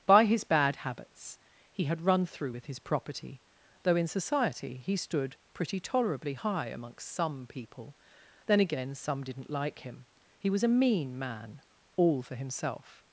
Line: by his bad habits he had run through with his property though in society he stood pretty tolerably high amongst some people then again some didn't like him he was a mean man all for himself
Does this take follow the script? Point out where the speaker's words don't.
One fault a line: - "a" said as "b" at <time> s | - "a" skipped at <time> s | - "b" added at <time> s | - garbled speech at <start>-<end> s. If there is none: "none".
none